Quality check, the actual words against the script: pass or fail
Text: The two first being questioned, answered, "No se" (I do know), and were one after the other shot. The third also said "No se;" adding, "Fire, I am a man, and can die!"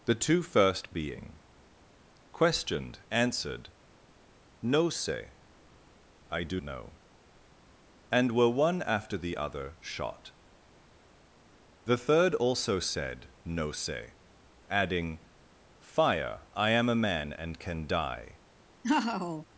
pass